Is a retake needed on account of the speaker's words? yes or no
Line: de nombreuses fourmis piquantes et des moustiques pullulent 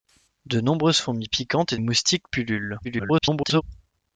yes